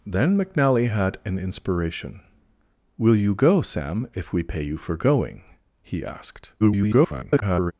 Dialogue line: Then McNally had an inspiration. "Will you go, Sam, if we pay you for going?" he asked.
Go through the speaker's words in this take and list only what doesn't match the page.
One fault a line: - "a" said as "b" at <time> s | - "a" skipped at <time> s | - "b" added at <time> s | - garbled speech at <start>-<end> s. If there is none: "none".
- garbled speech at 6.6-7.7 s